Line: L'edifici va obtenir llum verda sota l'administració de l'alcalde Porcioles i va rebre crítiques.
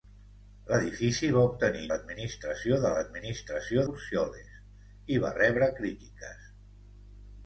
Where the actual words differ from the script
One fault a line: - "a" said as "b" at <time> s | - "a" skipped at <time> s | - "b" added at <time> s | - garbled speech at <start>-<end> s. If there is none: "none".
- "llum verda sota" skipped at 1.8 s
- "l'alcalde" said as "l'administració" at 3.0 s